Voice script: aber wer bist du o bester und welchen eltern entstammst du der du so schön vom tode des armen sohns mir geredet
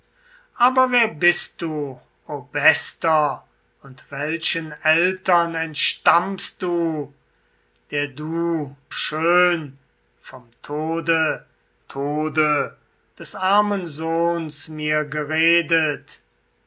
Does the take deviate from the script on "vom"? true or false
false